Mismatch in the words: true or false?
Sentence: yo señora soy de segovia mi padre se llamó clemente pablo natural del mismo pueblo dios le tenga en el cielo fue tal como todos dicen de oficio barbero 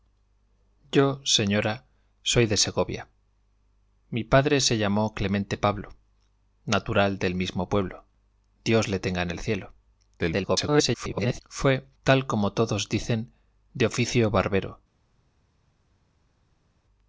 true